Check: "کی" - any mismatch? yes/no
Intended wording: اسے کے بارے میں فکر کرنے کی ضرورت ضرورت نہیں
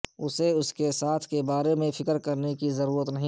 no